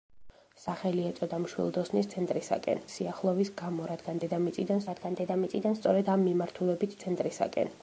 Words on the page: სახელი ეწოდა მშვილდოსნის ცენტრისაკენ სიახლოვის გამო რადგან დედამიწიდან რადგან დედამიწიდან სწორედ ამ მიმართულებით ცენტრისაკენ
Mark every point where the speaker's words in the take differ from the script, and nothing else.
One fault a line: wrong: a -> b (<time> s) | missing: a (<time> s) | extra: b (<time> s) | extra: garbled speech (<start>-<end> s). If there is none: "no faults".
no faults